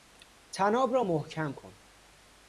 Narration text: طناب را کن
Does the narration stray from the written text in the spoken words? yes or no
yes